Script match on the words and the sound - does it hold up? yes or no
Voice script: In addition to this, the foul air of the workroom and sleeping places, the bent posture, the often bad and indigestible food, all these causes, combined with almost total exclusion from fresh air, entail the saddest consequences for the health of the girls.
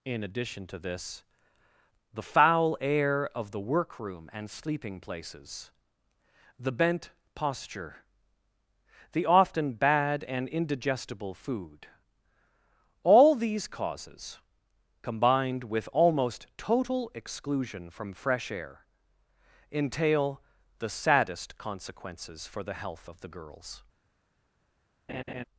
no